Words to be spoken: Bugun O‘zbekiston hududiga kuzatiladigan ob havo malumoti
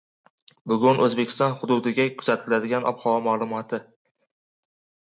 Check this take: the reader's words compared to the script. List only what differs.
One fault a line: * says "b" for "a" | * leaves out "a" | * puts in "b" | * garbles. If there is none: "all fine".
all fine